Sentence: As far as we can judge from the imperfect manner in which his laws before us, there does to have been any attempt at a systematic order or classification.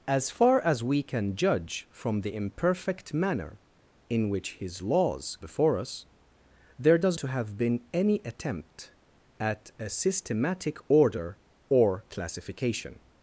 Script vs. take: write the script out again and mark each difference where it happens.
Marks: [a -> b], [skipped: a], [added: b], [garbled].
As far as we can judge from the imperfect manner in which his laws before us, there does to have been any attempt at a systematic order or classification.